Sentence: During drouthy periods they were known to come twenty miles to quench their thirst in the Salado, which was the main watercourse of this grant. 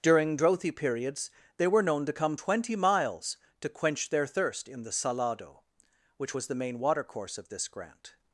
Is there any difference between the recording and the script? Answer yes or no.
no